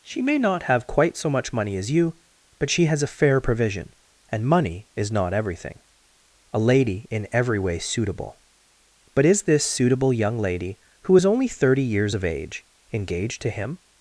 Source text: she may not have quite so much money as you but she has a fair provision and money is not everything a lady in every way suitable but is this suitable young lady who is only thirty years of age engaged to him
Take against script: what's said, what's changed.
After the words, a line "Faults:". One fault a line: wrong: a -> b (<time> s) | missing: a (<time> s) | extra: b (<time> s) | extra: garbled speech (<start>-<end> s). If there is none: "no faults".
she may not have quite so much money as you but she has a fair provision and money is not everything a lady in every way suitable but is this suitable young lady who is only thirty years of age engaged to him
Faults:
no faults